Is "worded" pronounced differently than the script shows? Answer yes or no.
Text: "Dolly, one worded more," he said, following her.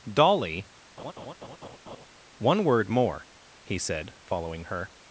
yes